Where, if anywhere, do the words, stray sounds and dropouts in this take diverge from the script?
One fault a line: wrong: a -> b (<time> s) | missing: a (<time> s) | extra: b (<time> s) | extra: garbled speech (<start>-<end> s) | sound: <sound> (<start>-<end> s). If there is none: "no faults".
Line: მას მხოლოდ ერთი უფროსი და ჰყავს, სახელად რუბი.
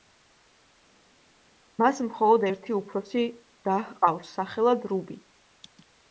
no faults